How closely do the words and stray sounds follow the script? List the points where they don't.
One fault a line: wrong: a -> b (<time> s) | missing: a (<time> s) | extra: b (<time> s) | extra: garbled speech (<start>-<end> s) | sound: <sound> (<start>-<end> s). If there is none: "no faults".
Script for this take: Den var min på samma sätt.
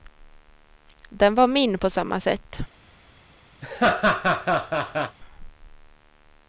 sound: laugh (3.6-5.2 s)